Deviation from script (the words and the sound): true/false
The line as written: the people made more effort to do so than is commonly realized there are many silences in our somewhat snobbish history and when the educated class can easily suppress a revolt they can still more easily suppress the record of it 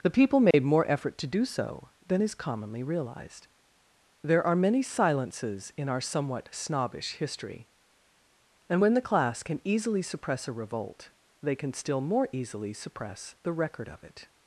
true